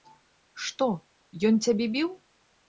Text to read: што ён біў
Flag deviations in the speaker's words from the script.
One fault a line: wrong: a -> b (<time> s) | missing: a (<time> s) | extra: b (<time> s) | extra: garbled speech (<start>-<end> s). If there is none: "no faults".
extra: цябе (1.7 s)